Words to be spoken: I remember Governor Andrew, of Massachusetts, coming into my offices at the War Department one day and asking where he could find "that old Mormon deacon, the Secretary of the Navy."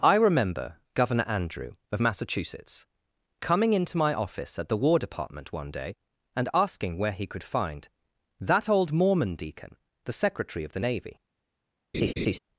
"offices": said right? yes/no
no